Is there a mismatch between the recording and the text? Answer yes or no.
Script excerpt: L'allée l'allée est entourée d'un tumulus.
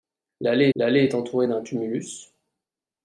no